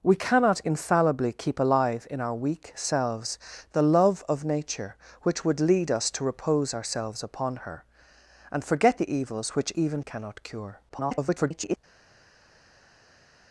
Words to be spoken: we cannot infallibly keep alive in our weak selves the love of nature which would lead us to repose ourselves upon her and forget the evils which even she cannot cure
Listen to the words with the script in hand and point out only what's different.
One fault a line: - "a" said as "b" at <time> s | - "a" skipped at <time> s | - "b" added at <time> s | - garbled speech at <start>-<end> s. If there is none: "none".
- "she" skipped at 10.0 s
- garbled speech at 10.9-11.8 s